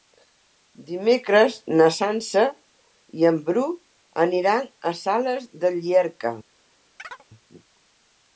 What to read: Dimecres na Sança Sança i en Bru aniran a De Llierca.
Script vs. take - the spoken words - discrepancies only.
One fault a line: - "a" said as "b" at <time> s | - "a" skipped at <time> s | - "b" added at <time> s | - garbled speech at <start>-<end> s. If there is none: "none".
- "Sança" skipped at 2.4 s
- "Sales" added at 5.0 s